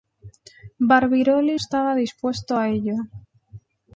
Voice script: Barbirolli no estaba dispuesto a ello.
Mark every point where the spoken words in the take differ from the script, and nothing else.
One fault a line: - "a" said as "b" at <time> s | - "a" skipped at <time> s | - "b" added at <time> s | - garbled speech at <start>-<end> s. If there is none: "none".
- "no" skipped at 1.6 s